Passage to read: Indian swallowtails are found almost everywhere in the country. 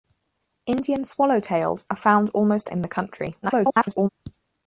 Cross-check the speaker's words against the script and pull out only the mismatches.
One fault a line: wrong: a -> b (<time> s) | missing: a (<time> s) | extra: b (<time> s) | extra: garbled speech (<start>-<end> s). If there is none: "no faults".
missing: everywhere (2.7 s)
extra: garbled speech (3.4-4.1 s)